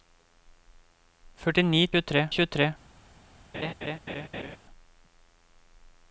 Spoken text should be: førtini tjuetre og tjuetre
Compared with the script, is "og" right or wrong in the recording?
right